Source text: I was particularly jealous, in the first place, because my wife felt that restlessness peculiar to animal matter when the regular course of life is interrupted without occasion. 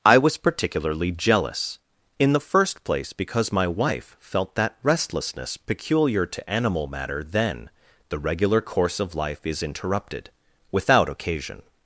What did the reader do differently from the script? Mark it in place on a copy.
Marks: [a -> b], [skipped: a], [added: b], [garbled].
I was particularly jealous, in the first place, because my wife felt that restlessness peculiar to animal matter [when -> then] the regular course of life is interrupted without occasion.